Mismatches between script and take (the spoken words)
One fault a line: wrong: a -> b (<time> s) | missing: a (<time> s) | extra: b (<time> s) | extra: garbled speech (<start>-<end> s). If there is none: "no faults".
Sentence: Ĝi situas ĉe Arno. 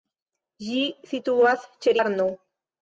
no faults